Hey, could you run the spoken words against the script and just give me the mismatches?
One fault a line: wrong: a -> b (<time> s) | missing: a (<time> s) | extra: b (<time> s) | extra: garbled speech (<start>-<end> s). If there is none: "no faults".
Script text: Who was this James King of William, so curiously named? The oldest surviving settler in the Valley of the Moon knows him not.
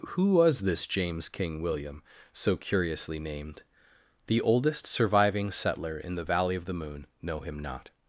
missing: of (1.6 s)
wrong: knows -> know (7.2 s)